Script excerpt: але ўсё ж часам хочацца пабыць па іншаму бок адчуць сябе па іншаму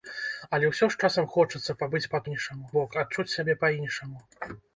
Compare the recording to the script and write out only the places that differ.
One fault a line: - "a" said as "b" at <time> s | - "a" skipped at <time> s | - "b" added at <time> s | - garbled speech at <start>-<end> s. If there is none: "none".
none